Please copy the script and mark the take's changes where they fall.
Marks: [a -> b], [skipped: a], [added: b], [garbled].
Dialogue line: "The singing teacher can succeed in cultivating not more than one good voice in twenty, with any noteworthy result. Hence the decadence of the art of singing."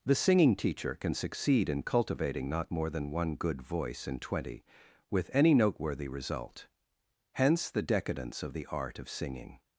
"The singing teacher can succeed in cultivating not more than one good voice in twenty, with any noteworthy result. Hence the decadence of the art of singing."